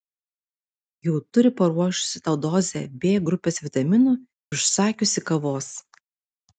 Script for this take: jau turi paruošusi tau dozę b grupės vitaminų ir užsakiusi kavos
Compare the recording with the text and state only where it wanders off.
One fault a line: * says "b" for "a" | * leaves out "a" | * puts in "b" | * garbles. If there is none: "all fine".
* leaves out "ir"